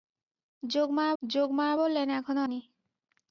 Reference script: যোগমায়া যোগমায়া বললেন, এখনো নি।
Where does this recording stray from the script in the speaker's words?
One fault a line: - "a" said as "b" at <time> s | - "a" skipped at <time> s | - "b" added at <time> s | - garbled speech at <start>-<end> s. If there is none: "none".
none